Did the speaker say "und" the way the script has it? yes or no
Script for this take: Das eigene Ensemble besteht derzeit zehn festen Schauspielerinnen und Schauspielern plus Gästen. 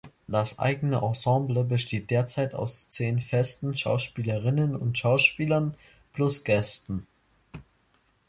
yes